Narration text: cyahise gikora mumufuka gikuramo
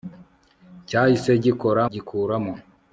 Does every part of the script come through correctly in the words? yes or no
no